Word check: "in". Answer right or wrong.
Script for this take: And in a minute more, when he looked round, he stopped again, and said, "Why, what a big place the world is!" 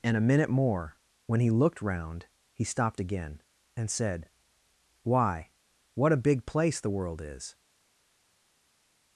wrong